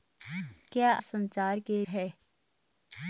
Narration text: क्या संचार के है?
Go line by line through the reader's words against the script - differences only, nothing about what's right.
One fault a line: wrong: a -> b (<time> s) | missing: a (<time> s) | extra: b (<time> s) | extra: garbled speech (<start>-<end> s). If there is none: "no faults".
no faults